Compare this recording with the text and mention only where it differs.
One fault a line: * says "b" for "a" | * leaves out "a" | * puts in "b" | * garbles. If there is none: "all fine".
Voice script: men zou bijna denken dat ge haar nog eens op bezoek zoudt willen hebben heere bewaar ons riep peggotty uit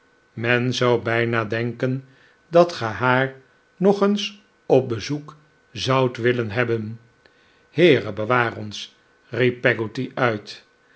all fine